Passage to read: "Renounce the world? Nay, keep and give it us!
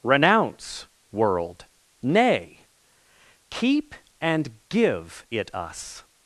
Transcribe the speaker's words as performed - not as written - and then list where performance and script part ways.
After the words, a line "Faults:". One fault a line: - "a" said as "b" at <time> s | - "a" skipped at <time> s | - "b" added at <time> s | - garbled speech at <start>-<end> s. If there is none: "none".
"Renounce world? Nay, keep and give it us!
Faults:
- "the" skipped at 0.9 s